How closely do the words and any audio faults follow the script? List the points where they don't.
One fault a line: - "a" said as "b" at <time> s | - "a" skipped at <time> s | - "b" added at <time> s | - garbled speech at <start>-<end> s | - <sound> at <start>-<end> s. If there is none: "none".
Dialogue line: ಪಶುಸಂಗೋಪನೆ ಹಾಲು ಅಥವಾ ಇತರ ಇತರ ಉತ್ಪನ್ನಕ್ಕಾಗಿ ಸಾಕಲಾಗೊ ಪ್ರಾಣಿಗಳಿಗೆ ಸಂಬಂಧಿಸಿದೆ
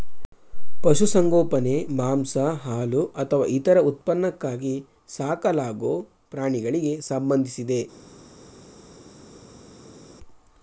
- "ಮಾಂಸ" added at 1.9 s
- "ಇತರ" skipped at 3.8 s